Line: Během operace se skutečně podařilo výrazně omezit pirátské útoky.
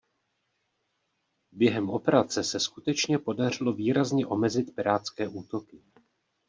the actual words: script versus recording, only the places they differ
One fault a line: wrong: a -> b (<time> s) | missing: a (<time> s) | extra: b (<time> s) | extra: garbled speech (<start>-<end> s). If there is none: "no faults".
no faults